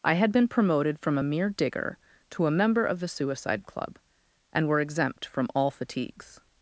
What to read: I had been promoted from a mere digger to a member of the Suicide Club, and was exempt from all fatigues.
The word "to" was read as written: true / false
true